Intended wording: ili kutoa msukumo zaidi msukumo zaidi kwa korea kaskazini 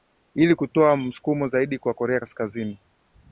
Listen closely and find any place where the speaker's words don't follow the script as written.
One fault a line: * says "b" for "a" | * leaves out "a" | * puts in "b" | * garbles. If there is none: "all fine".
* leaves out "msukumo zaidi"